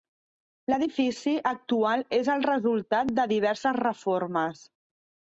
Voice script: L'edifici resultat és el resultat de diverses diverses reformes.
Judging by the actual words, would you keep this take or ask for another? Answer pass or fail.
fail